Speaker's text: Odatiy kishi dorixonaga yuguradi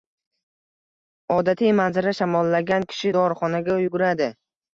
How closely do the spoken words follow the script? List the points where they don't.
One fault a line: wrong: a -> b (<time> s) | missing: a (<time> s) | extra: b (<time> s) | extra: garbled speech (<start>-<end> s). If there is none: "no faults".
extra: manzara shamollagan (1.8 s)